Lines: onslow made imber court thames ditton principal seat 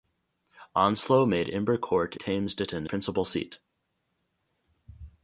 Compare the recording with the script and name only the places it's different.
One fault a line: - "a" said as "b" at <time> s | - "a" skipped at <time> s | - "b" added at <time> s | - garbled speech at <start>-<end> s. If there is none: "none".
none